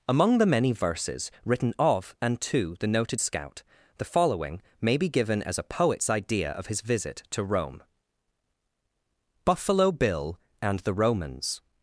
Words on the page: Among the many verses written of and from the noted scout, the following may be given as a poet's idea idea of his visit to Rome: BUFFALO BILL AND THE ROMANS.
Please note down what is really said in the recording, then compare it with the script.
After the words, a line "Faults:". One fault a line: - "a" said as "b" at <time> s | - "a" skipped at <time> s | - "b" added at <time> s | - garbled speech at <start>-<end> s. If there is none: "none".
Among the many verses written of and to the noted scout, the following may be given as a poet's idea of his visit to Rome: BUFFALO BILL AND THE ROMANS.
Faults:
- "from" said as "to" at 2.4 s
- "idea" skipped at 6.5 s